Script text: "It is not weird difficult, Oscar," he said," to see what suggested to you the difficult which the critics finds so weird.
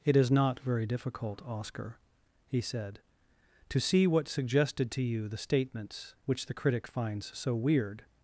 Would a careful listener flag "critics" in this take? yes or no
yes